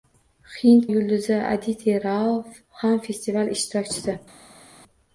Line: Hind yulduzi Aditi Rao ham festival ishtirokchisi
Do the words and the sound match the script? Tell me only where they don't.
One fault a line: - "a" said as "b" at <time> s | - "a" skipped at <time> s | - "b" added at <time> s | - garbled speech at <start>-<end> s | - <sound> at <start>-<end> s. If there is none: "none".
none